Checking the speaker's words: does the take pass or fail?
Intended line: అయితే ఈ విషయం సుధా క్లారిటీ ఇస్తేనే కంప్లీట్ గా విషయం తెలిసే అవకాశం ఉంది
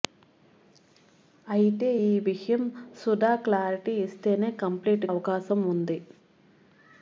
fail